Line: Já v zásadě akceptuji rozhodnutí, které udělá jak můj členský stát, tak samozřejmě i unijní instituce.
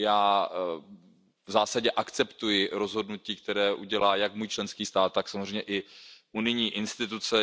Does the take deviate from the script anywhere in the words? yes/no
no